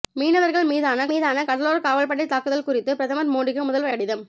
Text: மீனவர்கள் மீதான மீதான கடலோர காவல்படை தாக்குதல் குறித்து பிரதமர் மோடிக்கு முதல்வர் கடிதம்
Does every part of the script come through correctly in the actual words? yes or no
yes